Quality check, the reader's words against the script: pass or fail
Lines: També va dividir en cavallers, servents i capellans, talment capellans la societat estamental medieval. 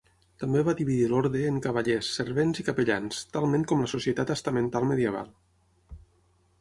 fail